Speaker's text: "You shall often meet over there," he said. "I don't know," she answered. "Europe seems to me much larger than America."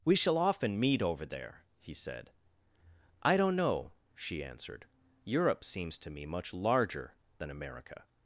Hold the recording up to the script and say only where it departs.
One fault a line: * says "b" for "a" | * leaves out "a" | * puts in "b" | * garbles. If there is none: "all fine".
* says "We" for "You"